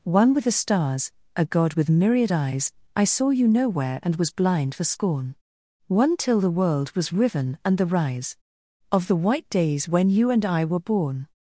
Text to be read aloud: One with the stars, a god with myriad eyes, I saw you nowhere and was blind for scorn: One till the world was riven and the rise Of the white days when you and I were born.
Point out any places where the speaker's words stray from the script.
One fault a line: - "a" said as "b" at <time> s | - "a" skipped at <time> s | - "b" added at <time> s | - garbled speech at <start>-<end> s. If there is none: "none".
none